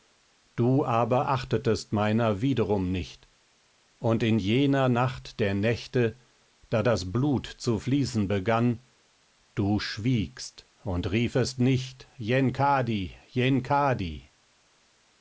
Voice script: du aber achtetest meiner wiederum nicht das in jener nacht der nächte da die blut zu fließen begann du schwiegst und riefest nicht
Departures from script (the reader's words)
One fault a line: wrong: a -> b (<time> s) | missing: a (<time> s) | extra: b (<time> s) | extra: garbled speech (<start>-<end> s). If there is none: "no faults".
wrong: das -> und (4.0 s)
wrong: die -> das (6.8 s)